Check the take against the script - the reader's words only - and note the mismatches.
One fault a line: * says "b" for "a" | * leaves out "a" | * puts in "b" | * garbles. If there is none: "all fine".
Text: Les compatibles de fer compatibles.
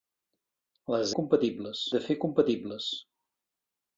all fine